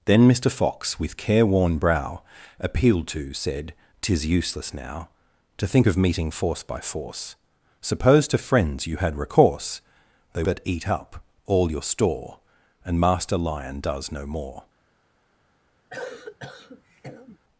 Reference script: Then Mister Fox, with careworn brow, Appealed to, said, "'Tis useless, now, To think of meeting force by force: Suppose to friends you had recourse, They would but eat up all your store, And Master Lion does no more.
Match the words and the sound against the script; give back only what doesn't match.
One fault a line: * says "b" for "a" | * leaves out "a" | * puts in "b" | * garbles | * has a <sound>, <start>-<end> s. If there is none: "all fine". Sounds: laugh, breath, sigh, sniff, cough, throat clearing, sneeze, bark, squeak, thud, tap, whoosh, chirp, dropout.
* leaves out "would"
* has a cough, 15.9-17.4 s